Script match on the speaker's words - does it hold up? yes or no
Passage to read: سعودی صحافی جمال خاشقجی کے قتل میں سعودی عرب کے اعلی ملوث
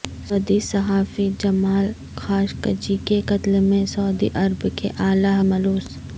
yes